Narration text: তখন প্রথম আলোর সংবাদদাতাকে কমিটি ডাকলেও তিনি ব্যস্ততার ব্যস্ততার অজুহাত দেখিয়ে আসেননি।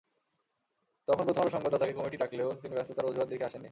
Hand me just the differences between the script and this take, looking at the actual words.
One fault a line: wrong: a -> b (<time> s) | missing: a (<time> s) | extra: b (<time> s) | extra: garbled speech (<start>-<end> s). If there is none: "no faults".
missing: ব্যস্ততার (3.1 s)